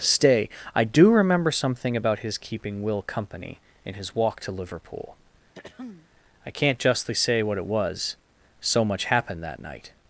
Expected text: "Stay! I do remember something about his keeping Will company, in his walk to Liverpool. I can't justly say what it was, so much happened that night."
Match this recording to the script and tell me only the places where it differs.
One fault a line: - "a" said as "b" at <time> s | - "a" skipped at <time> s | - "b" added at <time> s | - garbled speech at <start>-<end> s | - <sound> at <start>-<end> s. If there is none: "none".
- throat clearing at 5.5-6.1 s